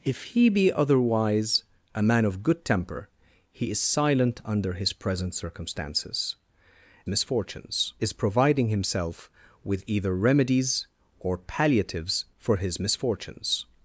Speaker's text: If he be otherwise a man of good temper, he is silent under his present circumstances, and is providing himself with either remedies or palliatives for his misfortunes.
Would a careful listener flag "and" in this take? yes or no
yes